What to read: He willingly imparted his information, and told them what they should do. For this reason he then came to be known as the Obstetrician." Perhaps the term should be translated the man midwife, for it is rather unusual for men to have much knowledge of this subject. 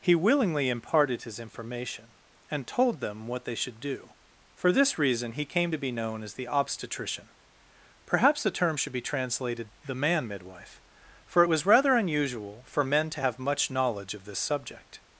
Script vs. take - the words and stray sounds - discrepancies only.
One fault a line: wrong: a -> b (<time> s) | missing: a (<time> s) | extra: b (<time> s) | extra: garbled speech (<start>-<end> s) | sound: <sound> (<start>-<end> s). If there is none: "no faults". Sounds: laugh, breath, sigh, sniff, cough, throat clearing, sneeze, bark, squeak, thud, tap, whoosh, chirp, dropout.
missing: then (5.5 s)
wrong: is -> was (11.5 s)